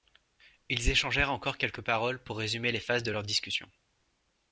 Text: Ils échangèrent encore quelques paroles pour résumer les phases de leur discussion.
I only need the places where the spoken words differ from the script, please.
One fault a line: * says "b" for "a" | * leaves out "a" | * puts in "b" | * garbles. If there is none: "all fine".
all fine